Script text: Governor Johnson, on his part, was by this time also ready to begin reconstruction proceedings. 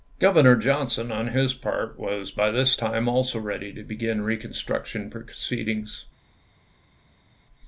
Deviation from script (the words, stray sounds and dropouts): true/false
false